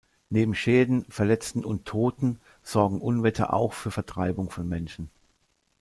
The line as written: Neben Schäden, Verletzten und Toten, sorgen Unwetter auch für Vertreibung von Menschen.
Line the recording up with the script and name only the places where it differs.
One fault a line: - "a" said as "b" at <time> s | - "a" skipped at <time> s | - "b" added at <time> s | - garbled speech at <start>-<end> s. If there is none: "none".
none